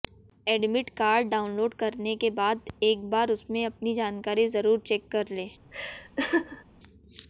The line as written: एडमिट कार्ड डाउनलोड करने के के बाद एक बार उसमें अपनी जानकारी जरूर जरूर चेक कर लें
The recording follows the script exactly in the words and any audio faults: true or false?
false